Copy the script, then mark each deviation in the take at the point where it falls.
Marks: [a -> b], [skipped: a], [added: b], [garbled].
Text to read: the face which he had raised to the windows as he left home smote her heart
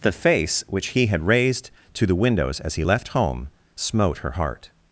the face which he had raised to the windows as he left home smote her heart